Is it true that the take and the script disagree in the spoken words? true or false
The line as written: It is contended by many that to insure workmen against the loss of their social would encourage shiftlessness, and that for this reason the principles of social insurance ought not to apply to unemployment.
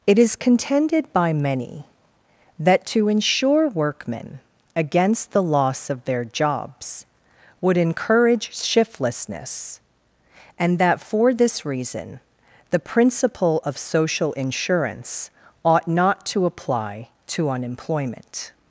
true